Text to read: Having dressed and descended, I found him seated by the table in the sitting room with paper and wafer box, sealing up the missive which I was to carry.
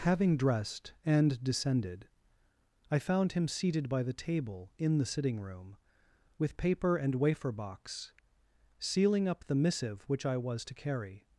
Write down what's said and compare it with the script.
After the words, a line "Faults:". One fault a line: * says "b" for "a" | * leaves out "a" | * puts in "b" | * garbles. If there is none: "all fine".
Having dressed and descended, I found him seated by the table in the sitting room with paper and wafer box, sealing up the missive which I was to carry.
Faults:
all fine